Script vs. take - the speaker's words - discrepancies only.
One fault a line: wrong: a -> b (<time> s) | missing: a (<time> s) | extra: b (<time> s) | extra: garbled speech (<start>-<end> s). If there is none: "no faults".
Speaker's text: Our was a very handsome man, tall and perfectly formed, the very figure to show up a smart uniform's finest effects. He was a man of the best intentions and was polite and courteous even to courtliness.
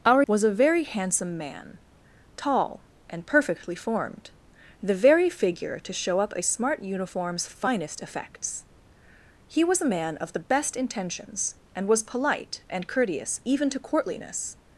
no faults